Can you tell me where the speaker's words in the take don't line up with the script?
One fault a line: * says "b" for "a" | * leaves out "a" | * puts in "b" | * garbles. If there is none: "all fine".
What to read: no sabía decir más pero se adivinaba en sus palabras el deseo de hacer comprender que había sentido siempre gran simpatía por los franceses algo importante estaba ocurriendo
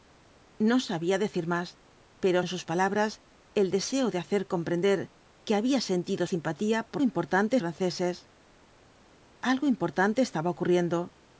* leaves out "se adivinaba"
* leaves out "siempre gran"
* says "importante" for "los"